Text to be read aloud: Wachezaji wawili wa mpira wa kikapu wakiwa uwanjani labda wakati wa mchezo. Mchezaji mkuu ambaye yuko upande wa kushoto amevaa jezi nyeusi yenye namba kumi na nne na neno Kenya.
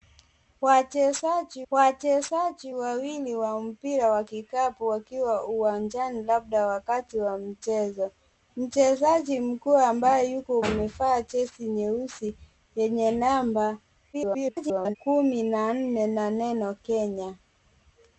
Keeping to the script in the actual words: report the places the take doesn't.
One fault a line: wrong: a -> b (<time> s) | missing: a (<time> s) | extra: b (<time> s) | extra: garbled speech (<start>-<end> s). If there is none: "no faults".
extra: wachezaji (1.7 s)
missing: upande wa kushoto (10.6 s)
extra: garbled speech (14.1-15.0 s)